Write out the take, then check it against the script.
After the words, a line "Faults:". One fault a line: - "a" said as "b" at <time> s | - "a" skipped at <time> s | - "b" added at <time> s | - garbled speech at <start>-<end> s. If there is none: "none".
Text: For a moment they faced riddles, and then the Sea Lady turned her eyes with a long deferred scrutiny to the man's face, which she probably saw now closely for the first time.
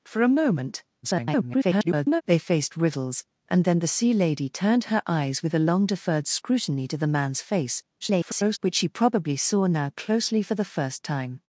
For a moment [garbled] they faced riddles, and then the Sea Lady turned her eyes with a long deferred scrutiny to the man's face, [garbled] which she probably saw now closely for the first time.
Faults:
- garbled speech at 1.0-2.2 s
- garbled speech at 8.0-8.6 s